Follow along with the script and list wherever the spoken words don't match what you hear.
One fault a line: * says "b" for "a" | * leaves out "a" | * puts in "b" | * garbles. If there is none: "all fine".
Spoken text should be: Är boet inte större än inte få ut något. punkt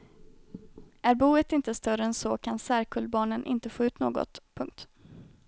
* puts in "så kan särkullbarnen"